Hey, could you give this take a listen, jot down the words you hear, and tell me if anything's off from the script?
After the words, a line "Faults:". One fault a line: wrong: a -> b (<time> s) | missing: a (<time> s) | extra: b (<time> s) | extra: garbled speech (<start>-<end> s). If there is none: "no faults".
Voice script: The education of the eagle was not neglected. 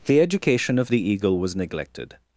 The education of the eagle was neglected.
Faults:
missing: not (1.6 s)